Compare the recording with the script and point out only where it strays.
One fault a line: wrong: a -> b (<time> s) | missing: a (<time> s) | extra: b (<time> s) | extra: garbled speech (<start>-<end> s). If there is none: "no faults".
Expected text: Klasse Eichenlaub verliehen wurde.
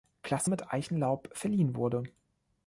extra: mit (0.5 s)